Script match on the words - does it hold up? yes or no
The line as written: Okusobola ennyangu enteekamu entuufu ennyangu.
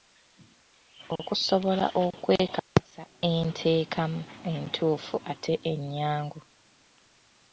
no